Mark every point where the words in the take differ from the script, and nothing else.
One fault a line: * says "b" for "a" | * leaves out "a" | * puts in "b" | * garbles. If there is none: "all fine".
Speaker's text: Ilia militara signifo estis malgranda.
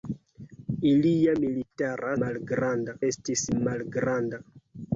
* says "malgranda" for "signifo"